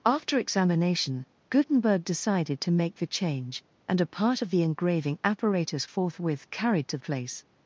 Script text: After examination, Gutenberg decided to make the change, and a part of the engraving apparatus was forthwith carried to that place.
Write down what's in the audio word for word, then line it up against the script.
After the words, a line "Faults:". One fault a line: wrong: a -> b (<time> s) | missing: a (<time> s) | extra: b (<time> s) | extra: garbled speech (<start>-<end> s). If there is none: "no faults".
After examination, Gutenberg decided to make the change, and a part of the engraving apparatus forthwith carried to place.
Faults:
missing: was (5.9 s)
missing: that (7.0 s)